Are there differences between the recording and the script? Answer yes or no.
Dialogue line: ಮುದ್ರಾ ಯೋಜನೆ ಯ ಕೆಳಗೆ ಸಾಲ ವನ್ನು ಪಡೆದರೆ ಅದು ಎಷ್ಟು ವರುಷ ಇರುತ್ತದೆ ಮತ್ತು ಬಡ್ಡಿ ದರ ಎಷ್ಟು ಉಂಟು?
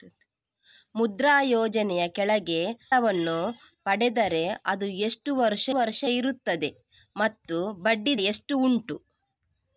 yes